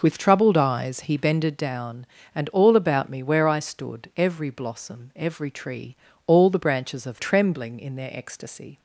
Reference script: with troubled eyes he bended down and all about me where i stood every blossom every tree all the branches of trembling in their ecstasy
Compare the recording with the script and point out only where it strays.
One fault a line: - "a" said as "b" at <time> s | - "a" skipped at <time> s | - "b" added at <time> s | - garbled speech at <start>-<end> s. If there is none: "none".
none